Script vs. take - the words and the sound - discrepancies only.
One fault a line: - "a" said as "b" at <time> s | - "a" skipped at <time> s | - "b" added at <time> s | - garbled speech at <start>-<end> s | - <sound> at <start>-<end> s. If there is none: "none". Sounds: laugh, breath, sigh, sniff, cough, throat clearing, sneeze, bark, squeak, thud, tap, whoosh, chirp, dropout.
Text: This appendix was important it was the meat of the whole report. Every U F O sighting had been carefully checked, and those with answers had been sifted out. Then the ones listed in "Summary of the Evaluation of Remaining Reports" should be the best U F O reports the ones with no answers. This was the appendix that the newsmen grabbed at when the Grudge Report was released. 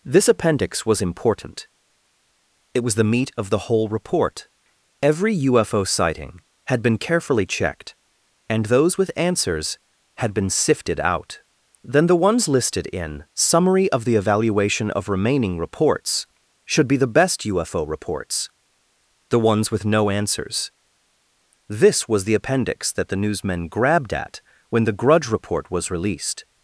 none